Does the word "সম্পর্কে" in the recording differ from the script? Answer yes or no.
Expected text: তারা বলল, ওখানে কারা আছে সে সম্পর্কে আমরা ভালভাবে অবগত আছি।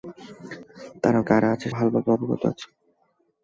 yes